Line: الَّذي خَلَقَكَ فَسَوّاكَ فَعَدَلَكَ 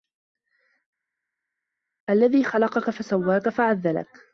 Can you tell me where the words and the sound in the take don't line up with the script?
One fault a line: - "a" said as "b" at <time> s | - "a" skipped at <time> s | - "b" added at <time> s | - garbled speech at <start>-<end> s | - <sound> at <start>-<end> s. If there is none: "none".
none